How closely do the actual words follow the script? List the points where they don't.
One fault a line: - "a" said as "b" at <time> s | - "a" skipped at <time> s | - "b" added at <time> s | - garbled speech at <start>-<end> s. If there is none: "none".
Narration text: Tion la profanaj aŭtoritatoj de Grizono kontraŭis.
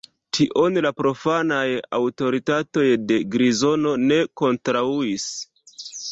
- "ne" added at 4.1 s